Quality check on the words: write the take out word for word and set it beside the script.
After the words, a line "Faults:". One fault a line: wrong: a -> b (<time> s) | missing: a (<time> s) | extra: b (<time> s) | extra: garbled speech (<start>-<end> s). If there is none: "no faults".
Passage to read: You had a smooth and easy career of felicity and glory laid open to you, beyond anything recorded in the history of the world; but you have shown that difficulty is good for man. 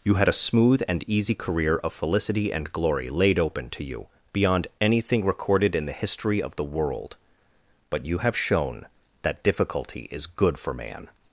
You had a smooth and easy career of felicity and glory laid open to you, beyond anything recorded in the history of the world; but you have shown that difficulty is good for man.
Faults:
no faults